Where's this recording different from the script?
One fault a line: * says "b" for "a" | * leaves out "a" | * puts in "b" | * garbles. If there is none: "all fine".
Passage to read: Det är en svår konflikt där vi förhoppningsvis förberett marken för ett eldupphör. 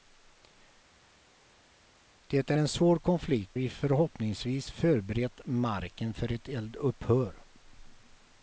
* leaves out "där"